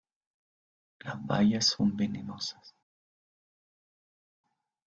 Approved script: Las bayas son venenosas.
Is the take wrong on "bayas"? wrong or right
right